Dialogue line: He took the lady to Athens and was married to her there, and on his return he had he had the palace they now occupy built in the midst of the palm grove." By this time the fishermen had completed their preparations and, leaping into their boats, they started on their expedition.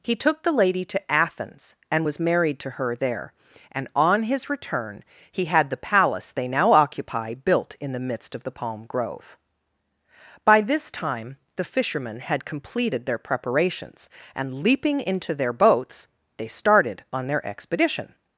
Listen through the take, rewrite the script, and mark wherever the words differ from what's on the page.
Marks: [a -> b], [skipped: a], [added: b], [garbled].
He took the lady to Athens and was married to her there, and on his return he had [skipped: he had] the palace they now occupy built in the midst of the palm grove." By this time the fishermen had completed their preparations and, leaping into their boats, they started on their expedition.